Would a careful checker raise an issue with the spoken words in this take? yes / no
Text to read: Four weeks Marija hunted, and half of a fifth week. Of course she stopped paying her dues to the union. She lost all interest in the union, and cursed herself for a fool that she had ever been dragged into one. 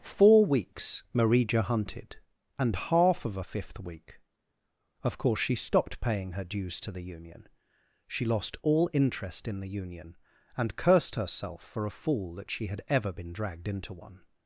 no